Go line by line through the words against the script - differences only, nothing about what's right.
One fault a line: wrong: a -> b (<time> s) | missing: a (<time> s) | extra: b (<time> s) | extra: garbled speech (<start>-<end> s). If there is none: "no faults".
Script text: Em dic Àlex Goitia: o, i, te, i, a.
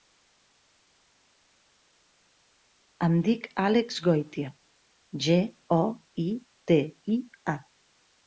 extra: ge (5.3 s)